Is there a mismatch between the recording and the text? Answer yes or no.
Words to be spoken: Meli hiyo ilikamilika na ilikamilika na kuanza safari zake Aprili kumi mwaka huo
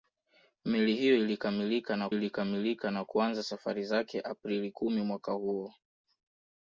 no